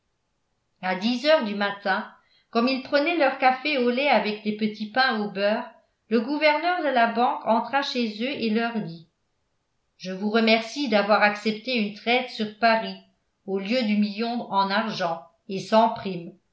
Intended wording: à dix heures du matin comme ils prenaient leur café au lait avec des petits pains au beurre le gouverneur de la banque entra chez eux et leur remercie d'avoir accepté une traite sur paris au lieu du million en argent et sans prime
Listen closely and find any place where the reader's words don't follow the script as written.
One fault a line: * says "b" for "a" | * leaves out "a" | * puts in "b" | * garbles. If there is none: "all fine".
* puts in "dit je vous"